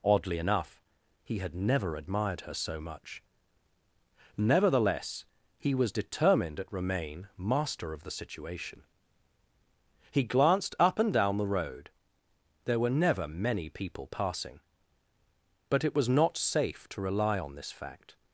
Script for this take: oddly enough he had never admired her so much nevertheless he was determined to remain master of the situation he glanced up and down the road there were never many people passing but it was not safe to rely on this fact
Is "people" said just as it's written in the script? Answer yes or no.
yes